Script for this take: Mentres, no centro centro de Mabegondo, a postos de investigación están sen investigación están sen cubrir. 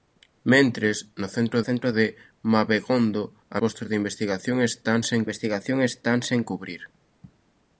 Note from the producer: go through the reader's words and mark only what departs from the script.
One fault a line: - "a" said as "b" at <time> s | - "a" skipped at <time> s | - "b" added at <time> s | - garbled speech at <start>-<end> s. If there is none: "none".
none